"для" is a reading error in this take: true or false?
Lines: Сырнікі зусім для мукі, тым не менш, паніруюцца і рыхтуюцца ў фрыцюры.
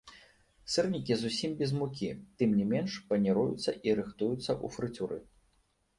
true